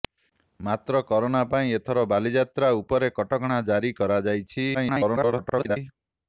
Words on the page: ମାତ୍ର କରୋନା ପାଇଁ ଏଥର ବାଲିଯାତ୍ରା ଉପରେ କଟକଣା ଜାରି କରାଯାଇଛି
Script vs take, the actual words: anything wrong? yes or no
yes